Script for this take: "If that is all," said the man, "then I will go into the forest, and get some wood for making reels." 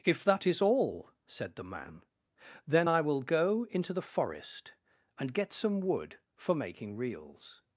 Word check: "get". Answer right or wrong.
right